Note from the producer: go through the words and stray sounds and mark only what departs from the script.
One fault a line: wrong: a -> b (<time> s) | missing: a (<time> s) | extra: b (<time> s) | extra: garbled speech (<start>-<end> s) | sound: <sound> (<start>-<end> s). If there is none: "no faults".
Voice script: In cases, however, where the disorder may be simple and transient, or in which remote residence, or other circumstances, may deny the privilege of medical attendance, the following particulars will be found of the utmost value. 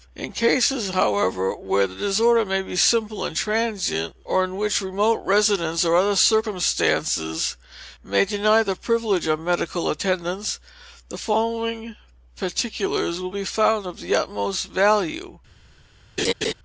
sound: laugh (16.2-16.5 s)